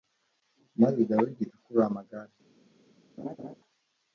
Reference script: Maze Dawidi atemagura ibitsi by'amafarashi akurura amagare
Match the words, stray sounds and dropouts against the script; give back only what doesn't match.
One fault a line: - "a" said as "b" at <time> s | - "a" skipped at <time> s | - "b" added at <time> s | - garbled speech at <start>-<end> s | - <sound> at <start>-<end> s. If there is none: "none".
- "atemagura ibitsi by'amafarashi" skipped at 1.4 s
- laugh at 3.2-3.5 s